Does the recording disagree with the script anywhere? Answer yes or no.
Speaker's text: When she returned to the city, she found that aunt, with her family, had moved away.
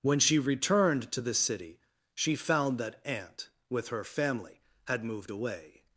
no